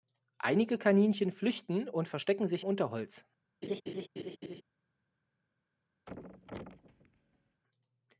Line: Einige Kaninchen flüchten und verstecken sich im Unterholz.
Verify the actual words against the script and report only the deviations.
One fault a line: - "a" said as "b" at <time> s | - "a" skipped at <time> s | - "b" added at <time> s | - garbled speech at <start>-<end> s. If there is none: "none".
- "im" skipped at 2.6 s